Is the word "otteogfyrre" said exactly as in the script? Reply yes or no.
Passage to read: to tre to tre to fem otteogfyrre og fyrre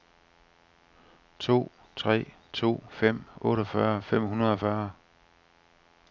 no